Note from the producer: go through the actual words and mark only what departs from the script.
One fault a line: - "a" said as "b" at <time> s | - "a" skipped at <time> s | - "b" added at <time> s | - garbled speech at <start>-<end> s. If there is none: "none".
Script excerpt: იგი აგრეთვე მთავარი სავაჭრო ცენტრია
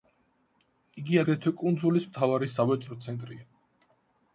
- "კუნძულის" added at 1.6 s